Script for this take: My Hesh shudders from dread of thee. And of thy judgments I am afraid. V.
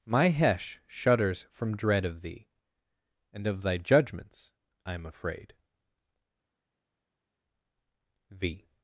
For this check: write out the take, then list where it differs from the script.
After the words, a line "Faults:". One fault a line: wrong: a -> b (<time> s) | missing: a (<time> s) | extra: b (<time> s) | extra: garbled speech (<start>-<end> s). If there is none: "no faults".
My Hesh shudders from dread of thee. And of thy judgments I am afraid. V.
Faults:
no faults